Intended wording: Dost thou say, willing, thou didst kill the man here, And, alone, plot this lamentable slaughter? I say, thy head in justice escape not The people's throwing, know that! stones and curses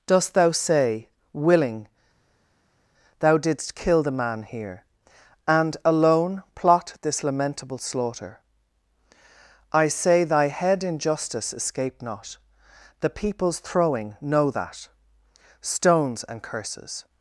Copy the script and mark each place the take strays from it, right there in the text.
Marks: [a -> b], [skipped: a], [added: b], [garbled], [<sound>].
Dost thou say, willing, thou didst kill the man here, And, alone, plot this lamentable slaughter? I say, thy head in justice escape not The people's throwing, know that! stones and curses